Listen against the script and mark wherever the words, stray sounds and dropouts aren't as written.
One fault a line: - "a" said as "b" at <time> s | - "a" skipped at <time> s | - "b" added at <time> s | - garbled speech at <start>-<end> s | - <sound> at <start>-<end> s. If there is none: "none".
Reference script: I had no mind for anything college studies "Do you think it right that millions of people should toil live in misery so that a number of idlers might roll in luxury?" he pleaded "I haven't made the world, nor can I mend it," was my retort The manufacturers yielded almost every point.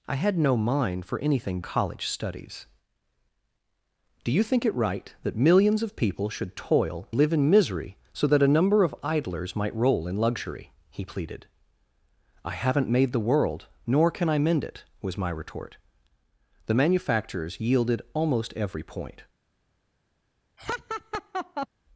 - laugh at 20.6-21.7 s